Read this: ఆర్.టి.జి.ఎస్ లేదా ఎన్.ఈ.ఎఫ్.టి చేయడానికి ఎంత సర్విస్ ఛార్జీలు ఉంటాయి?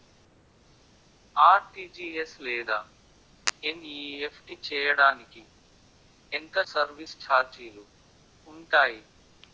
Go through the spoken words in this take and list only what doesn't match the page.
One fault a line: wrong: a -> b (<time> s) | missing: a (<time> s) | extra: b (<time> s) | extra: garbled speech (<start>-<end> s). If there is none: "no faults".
no faults